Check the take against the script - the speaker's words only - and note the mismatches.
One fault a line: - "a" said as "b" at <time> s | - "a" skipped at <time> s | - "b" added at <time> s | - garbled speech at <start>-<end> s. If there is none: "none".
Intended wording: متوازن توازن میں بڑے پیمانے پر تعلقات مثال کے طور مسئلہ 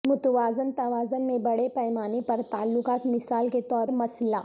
none